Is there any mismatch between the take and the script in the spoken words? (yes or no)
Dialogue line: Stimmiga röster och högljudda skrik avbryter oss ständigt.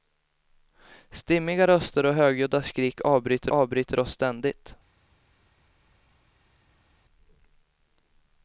yes